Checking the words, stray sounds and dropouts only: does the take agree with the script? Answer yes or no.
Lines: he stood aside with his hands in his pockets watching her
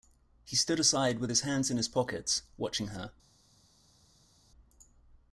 yes